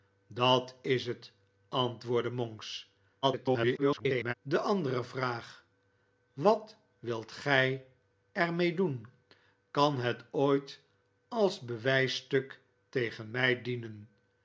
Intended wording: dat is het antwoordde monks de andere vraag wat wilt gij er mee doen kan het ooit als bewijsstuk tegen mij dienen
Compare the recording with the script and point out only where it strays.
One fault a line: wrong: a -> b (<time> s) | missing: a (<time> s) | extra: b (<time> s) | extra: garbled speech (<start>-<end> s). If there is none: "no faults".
extra: garbled speech (3.2-4.3 s)